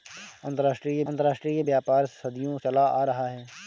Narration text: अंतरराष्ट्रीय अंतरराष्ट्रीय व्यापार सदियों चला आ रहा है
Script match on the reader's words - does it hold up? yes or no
yes